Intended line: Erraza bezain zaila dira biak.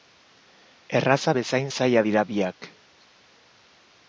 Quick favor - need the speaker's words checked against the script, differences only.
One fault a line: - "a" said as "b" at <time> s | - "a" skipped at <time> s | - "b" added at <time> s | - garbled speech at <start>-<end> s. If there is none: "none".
none